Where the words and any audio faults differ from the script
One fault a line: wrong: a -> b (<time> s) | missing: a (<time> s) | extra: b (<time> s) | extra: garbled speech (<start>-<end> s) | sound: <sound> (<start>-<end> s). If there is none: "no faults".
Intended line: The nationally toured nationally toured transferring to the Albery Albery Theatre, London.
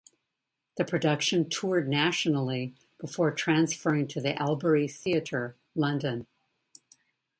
wrong: nationally -> production (0.8 s)
wrong: toured -> before (3.0 s)
missing: Albery (4.9 s)